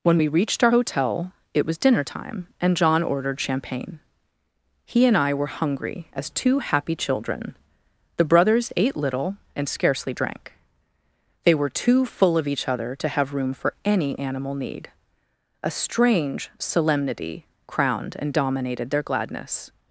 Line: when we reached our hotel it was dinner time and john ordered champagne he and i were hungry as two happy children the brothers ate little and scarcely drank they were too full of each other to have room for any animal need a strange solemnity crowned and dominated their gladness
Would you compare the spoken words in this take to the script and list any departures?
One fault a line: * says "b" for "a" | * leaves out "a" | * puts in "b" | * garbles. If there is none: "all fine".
all fine